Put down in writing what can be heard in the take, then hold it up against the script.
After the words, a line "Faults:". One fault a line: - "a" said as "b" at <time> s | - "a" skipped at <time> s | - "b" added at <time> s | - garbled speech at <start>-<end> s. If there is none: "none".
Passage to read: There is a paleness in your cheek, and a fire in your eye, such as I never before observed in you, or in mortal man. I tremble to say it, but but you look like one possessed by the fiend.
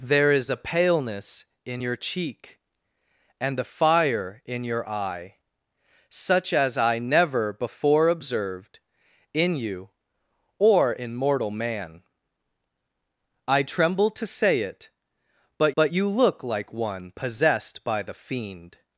There is a paleness in your cheek, and a fire in your eye, such as I never before observed in you, or in mortal man. I tremble to say it, but but you look like one possessed by the fiend.
Faults:
none